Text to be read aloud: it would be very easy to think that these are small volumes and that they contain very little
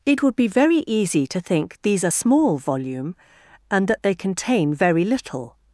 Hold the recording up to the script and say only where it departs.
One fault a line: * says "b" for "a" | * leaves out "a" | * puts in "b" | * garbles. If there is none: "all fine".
* leaves out "that"
* says "volume" for "volumes"